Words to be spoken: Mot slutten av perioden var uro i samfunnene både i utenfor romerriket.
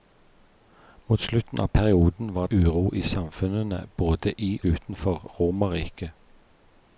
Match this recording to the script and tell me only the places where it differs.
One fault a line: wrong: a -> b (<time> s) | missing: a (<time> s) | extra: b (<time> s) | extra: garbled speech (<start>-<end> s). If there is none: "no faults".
no faults